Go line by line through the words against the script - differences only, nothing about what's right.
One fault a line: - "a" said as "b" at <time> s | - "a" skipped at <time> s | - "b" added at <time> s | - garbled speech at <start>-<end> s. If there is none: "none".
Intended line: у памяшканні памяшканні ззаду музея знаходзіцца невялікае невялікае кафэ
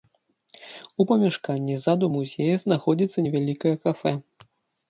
- "памяшканні" skipped at 1.8 s
- "невялікае" skipped at 3.7 s